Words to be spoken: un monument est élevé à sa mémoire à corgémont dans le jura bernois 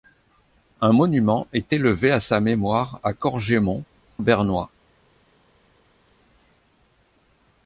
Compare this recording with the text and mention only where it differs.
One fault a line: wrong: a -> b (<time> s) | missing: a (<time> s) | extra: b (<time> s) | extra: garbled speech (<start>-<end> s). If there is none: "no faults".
missing: dans le jura (3.8 s)